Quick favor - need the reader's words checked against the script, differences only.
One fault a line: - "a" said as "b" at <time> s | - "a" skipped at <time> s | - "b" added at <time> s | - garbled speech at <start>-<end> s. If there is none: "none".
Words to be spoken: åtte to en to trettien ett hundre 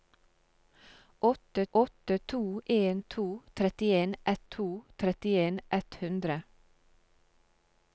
- "åtte" added at 1.7 s
- "to trettien ett" added at 4.4 s